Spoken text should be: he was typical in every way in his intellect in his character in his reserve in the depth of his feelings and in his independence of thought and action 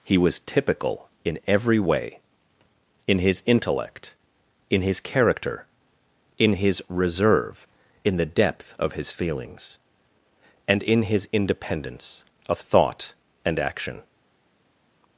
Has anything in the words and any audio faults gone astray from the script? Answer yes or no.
no